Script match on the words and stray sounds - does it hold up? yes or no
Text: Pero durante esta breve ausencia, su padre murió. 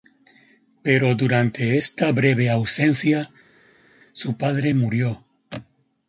yes